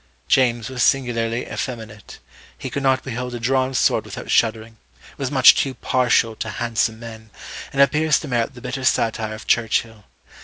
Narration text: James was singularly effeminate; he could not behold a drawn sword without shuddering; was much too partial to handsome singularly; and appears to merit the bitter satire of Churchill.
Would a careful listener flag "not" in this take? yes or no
no